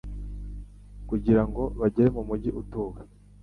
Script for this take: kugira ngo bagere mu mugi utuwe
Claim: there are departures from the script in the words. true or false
false